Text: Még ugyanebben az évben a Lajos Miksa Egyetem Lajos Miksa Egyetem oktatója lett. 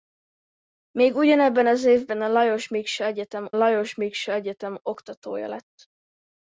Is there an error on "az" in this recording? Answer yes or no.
no